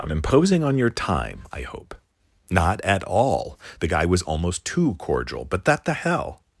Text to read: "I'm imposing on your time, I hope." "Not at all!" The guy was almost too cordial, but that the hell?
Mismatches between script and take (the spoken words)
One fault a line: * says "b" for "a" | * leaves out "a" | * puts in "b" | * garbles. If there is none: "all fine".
all fine